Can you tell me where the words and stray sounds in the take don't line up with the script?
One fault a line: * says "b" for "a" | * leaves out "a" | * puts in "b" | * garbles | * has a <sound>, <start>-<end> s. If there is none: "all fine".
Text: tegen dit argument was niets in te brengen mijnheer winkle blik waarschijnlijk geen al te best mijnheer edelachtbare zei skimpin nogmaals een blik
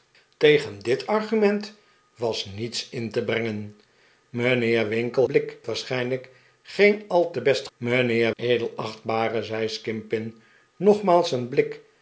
all fine